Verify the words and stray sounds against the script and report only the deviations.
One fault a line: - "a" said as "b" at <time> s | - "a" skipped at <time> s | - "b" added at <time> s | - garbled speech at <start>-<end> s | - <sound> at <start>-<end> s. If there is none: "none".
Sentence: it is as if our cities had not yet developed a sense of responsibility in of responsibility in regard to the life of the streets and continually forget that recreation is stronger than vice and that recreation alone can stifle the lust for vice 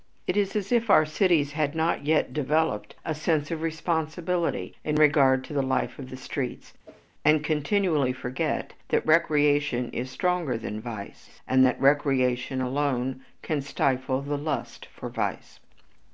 - "of responsibility in" skipped at 5.0 s
- whoosh at 6.8-7.1 s